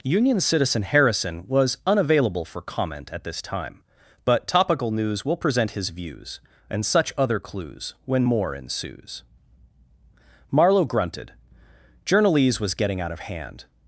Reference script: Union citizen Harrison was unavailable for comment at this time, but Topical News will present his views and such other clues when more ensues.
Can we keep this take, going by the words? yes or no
no